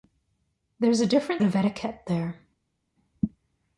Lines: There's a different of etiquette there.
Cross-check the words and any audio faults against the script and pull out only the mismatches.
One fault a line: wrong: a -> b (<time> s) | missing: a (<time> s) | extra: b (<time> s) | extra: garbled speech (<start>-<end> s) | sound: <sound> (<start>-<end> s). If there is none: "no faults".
no faults